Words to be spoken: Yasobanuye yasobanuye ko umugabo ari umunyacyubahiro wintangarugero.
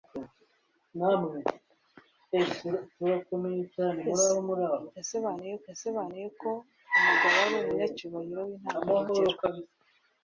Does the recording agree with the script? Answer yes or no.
yes